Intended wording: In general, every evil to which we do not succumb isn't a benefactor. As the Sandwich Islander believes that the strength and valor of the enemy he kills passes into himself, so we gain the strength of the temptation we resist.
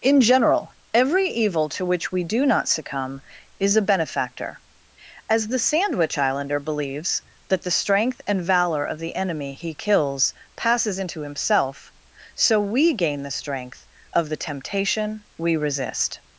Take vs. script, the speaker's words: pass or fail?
fail